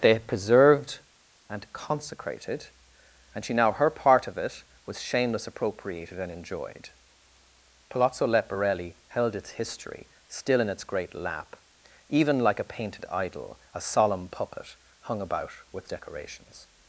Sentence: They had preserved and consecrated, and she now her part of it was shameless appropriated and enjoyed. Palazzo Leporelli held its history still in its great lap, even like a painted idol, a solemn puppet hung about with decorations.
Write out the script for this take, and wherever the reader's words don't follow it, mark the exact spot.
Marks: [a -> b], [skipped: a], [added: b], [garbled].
They had preserved and consecrated, and she now her part of it was shameless appropriated and enjoyed. Palazzo Leporelli held its history still in its great lap, even like a painted idol, a solemn puppet hung about with decorations.